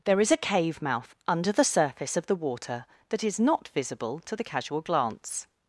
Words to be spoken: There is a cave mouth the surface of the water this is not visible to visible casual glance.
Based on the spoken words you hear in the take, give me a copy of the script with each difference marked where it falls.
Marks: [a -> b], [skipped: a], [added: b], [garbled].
There is a cave mouth [added: under] the surface of the water [this -> that] is not visible to [visible -> the] casual glance.